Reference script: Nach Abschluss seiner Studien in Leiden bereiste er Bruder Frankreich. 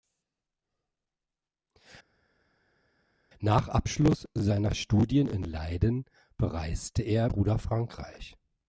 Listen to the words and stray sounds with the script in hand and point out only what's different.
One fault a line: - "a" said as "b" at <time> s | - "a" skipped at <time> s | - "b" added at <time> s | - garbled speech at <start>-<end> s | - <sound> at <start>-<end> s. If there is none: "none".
none